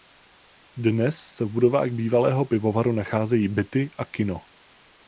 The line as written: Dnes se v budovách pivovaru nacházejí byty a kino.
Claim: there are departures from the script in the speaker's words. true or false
true